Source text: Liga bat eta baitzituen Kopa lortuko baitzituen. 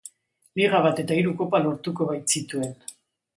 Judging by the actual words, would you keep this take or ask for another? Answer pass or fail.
fail